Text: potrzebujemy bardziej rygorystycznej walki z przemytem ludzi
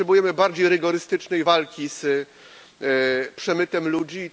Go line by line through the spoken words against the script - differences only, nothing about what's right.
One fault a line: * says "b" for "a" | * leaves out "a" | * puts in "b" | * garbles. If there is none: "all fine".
all fine